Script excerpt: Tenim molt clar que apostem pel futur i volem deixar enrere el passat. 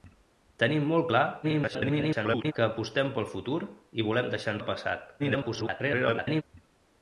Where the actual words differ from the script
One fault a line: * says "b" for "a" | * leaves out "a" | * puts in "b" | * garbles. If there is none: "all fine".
* garbles
* leaves out "enrere"
* garbles